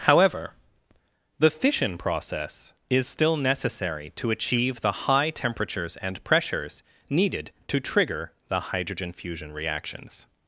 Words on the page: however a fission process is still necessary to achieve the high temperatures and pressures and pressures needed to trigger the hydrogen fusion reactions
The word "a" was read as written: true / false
false